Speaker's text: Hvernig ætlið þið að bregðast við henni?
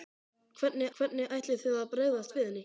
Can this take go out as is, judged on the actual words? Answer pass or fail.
fail